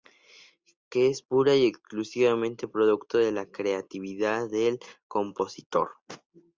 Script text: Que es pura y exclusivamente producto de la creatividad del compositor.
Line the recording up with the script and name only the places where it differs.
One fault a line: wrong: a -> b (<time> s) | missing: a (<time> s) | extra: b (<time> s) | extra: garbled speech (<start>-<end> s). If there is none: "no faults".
no faults